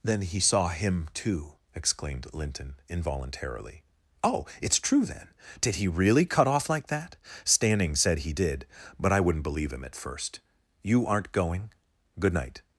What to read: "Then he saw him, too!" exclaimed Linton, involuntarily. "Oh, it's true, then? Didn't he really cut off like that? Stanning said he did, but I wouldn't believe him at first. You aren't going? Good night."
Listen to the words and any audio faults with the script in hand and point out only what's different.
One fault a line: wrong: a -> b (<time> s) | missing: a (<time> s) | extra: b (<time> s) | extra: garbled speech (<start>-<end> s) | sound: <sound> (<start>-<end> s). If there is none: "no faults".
wrong: Didn't -> Did (5.6 s)